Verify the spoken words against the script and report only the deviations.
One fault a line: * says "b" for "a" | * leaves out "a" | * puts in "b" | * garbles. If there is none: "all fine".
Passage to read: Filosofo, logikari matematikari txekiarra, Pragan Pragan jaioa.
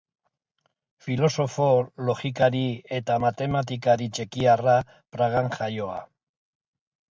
* puts in "eta"
* leaves out "Pragan"